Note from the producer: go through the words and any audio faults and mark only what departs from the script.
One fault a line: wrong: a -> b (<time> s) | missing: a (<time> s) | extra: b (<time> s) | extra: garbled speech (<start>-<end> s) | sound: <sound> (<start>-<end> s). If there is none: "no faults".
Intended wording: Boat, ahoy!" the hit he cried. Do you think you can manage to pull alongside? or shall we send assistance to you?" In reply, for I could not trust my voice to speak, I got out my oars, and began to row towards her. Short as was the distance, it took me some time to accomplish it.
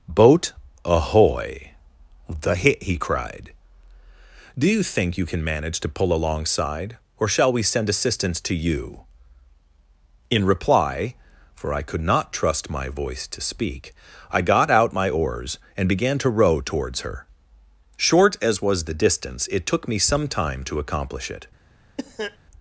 sound: cough (22.0-22.4 s)